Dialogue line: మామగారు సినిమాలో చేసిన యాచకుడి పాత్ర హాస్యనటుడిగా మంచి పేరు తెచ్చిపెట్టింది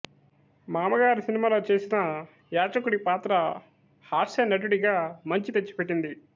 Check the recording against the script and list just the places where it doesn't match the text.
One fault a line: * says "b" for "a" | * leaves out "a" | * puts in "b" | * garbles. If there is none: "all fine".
* leaves out "పేరు"